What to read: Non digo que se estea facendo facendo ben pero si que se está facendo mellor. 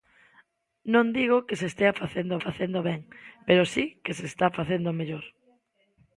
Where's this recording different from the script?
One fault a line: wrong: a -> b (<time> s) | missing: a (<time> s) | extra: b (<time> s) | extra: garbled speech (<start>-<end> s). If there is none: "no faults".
no faults